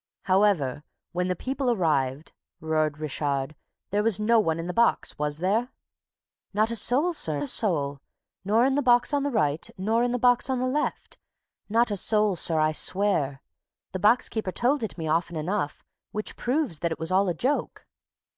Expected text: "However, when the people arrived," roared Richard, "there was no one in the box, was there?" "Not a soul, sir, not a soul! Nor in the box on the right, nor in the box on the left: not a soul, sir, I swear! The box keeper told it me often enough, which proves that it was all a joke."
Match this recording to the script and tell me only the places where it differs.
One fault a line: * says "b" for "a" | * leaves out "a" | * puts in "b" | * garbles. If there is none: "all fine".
* leaves out "not"